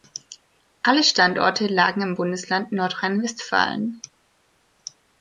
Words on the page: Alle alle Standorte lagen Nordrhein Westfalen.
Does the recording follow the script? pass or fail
fail